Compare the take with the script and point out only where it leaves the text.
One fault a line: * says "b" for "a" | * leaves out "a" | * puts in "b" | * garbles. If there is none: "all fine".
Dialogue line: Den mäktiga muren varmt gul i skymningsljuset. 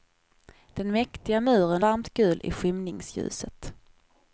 all fine